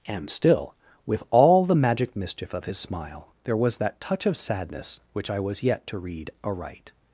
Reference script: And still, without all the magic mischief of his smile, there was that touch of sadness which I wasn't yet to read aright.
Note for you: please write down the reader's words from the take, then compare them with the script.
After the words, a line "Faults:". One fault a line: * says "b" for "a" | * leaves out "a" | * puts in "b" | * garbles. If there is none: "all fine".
And still, with all the magic mischief of his smile, there was that touch of sadness which I was yet to read aright.
Faults:
* says "with" for "without"
* says "was" for "wasn't"